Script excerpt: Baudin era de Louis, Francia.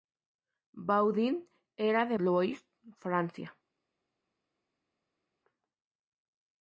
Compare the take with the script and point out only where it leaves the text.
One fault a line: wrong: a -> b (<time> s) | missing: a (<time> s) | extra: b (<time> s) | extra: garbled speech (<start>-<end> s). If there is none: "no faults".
no faults